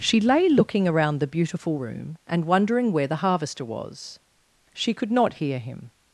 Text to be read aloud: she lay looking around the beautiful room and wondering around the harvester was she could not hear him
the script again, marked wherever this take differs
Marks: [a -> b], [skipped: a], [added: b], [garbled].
she lay looking around the beautiful room and wondering [around -> where] the harvester was she could not hear him